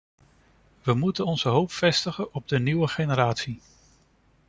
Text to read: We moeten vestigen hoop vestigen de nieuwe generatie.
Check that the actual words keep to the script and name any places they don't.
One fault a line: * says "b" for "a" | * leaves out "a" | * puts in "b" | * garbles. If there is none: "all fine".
* says "onze" for "vestigen"
* puts in "op"